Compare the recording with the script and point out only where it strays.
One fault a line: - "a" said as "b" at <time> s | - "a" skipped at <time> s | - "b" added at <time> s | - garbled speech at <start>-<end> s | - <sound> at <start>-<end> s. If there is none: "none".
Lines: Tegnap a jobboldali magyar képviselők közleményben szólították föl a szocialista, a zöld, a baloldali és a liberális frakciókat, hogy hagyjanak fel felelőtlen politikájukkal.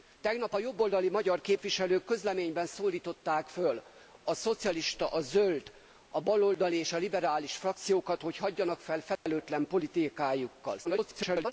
- dropout at 9.2-9.3 s
- garbled speech at 10.8-11.5 s